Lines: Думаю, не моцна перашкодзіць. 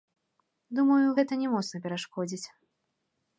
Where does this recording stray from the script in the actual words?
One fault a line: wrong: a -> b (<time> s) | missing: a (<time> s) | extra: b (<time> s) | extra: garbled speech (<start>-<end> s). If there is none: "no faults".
extra: гэта (1.2 s)